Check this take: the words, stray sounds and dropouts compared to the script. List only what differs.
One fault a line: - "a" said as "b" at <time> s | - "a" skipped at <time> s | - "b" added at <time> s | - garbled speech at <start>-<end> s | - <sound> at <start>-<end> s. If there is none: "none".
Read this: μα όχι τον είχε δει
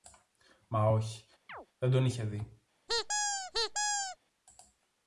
- chirp at 1.5-1.7 s
- "δεν" added at 1.8 s
- squeak at 2.9-4.2 s